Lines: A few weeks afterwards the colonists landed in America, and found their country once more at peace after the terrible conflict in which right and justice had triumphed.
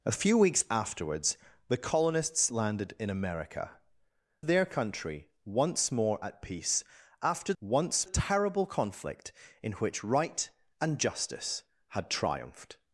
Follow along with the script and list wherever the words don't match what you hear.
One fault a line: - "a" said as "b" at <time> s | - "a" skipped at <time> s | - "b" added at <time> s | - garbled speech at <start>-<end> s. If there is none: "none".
- "and found" skipped at 3.8 s
- "the" said as "once" at 7.6 s